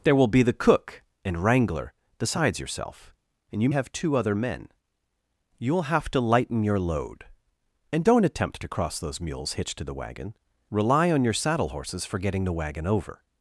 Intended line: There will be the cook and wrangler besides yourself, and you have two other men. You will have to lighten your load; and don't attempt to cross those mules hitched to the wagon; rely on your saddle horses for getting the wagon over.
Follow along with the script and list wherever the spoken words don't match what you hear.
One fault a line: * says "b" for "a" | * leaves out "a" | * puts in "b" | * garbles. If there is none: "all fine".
all fine